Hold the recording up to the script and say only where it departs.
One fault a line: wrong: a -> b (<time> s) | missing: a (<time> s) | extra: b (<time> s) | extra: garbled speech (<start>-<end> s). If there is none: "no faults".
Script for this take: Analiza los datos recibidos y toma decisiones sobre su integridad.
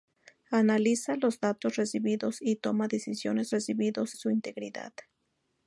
wrong: sobre -> recibidos (3.5 s)